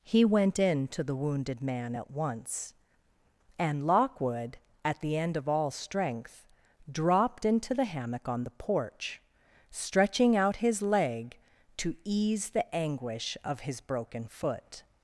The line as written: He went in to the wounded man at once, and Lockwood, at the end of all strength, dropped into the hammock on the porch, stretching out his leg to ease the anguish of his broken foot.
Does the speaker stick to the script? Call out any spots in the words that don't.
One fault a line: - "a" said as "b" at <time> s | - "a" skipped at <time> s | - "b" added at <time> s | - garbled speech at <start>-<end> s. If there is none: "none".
none